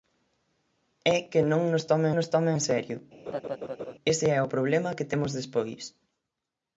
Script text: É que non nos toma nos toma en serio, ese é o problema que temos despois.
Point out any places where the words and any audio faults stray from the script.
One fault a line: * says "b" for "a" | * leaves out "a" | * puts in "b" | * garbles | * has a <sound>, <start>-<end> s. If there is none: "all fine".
* has a laugh, 3.3-3.9 s